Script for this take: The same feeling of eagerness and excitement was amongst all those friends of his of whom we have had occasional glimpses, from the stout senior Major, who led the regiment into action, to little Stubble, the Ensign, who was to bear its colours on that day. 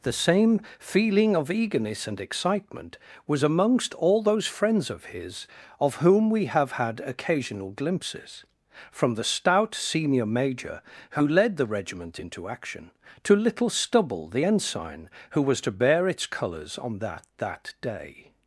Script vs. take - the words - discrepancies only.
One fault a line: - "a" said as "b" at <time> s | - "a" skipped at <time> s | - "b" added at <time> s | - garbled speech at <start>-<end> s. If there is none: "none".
- "that" added at 17.4 s